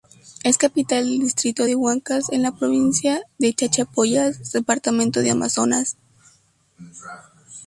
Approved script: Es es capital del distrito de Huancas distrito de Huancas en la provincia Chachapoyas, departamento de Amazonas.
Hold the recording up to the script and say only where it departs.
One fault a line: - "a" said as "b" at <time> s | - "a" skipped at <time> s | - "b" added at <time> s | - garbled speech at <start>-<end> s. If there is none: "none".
- "es" skipped at 0.6 s
- "distrito de Huancas" skipped at 2.3 s
- "de" added at 3.4 s